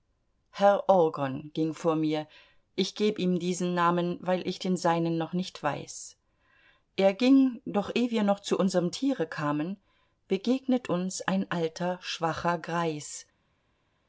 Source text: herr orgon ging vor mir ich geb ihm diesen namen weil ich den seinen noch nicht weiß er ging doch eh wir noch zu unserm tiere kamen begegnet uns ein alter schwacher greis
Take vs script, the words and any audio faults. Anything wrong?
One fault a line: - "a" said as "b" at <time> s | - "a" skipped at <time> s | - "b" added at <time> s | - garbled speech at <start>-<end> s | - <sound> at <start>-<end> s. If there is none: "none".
none